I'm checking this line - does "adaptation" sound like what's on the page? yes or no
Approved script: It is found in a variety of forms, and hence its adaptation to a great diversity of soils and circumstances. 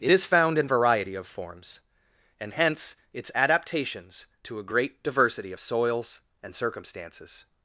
no